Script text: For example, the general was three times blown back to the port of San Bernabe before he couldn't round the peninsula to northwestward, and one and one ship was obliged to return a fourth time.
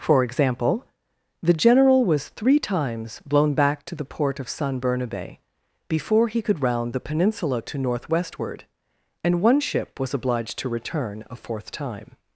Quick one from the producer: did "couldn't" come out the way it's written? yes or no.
no